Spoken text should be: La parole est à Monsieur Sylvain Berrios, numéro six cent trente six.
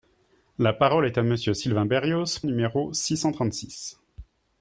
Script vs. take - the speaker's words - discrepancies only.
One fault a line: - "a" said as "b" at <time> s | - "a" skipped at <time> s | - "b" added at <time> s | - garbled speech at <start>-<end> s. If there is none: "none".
none